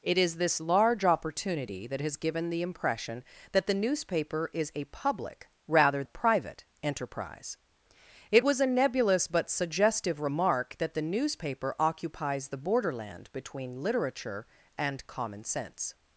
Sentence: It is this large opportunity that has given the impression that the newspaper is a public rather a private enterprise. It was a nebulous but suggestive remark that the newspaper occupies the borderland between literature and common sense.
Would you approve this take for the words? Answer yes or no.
yes